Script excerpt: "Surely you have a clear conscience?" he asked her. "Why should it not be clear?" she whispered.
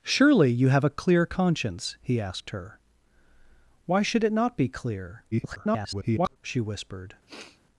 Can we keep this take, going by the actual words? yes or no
no